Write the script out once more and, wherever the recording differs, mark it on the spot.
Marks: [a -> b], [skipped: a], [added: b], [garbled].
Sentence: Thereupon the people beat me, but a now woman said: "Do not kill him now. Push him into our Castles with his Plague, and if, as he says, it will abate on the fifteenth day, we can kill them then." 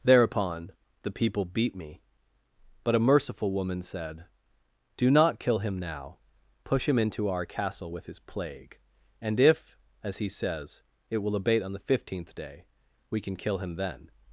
Thereupon the people beat me, but a [now -> merciful] woman said: "Do not kill him now. Push him into our [Castles -> Castle] with his Plague, and if, as he says, it will abate on the fifteenth day, we can kill [them -> him] then."